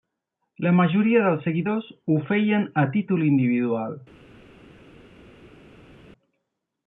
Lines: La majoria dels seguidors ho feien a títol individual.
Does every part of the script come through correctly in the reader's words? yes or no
yes